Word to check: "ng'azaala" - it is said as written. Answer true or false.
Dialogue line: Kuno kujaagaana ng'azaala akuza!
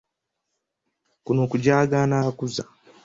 false